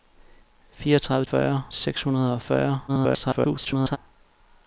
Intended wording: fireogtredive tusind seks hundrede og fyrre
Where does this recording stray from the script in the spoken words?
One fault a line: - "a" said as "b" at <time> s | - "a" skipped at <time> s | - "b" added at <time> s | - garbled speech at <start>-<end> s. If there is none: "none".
- "tusind" said as "fyrre" at 1.3 s
- garbled speech at 2.9-4.0 s